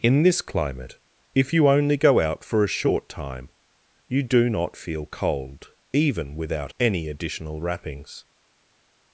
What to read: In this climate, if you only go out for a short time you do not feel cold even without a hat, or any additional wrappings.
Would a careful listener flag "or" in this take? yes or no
yes